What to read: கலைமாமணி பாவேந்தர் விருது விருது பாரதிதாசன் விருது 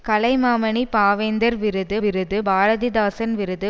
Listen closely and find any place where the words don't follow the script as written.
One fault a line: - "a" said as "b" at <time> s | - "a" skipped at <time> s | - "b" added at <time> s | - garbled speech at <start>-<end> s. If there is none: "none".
none